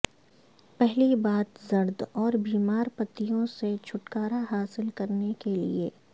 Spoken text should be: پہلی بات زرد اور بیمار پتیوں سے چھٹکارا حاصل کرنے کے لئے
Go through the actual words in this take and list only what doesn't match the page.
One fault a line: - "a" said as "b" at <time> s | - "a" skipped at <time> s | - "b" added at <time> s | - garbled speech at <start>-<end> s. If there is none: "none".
none